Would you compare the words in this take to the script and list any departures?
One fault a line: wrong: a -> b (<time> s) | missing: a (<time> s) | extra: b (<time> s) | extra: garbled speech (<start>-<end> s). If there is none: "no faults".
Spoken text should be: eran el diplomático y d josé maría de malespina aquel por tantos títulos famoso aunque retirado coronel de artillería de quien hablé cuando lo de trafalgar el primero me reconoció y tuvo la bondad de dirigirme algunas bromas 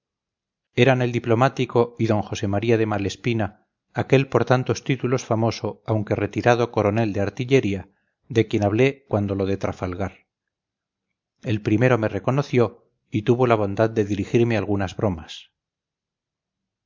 no faults